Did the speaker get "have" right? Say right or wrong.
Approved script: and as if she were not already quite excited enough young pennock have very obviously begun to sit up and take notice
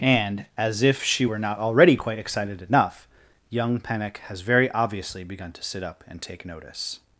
wrong